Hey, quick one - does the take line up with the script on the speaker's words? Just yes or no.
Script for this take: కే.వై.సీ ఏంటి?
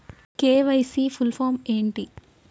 no